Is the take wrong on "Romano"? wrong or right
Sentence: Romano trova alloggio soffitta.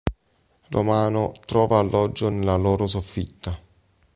right